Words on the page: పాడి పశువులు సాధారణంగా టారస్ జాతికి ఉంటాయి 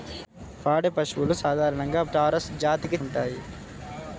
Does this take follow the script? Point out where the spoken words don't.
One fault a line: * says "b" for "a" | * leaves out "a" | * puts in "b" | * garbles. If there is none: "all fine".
all fine